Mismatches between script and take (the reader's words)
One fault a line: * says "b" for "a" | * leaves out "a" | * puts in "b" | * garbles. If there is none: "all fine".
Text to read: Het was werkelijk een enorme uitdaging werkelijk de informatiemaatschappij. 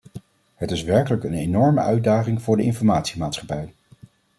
* says "is" for "was"
* says "voor" for "werkelijk"